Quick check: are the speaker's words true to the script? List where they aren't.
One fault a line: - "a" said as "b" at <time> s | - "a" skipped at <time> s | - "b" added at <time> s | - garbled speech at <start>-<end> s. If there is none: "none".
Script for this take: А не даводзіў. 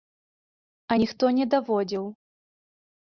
- "ніхто" added at 1.0 s